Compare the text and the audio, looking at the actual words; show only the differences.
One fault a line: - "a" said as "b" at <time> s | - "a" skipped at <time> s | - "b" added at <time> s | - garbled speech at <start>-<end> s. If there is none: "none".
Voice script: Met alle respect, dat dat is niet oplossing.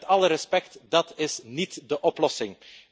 - "dat" skipped at 1.1 s
- "de" added at 1.9 s